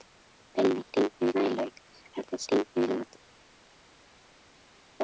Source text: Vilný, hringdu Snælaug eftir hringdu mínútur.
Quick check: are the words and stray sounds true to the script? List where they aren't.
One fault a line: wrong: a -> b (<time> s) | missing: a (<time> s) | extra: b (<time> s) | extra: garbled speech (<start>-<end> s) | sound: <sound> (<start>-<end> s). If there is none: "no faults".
no faults